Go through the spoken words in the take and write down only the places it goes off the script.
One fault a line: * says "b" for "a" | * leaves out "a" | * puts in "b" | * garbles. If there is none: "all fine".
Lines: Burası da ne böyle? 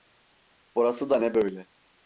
all fine